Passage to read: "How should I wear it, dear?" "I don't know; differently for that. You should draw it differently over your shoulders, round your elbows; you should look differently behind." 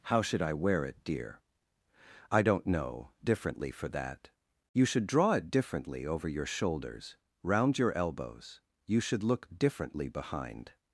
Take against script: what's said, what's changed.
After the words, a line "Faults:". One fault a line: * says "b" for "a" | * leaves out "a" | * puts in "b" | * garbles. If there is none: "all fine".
"How should I wear it, dear?" "I don't know; differently for that. You should draw it differently over your shoulders, round your elbows; you should look differently behind."
Faults:
all fine